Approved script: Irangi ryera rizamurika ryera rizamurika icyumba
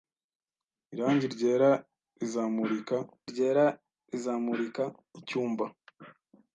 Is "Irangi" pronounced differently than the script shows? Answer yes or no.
no